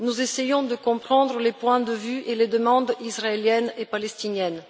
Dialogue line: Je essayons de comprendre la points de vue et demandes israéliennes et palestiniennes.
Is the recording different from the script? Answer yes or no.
yes